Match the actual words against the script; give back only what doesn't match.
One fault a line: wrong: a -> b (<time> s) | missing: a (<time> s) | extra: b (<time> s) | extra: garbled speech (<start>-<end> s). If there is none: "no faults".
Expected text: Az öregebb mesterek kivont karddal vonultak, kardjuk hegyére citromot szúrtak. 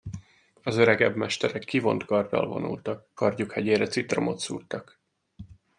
no faults